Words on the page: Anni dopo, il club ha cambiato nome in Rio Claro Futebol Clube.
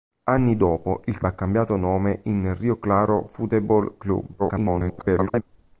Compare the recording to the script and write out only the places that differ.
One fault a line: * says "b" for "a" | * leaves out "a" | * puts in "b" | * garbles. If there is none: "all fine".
* leaves out "club"
* garbles